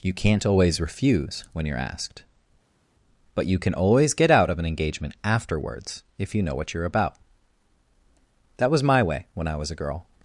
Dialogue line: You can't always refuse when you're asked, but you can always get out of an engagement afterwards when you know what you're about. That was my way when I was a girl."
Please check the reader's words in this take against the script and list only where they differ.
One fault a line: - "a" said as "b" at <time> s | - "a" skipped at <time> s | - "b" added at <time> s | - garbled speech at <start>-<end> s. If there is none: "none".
- "when" said as "if" at 6.2 s